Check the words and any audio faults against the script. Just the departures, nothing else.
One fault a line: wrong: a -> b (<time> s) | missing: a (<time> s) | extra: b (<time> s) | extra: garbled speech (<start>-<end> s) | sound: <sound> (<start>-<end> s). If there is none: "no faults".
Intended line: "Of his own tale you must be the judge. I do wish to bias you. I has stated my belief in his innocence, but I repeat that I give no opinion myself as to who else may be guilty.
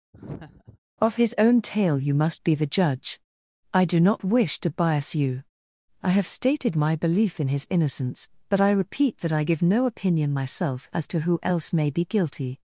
sound: laugh (0.1-0.8 s)
extra: not (4.0 s)
wrong: has -> have (6.1 s)